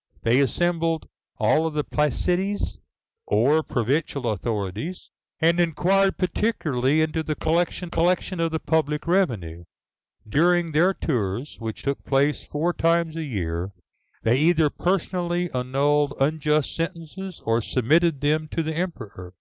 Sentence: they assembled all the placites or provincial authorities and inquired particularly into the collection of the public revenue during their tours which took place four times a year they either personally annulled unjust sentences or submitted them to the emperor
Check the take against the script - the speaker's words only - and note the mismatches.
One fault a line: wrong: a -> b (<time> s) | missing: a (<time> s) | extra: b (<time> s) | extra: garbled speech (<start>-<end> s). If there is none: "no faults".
extra: collection (7.9 s)